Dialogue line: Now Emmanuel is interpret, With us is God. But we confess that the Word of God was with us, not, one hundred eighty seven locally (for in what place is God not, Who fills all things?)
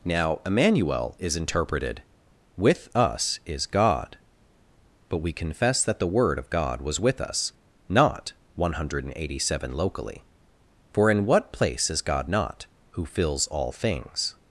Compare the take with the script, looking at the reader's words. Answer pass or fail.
fail